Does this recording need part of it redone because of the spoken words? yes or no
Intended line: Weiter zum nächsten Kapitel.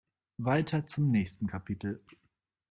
no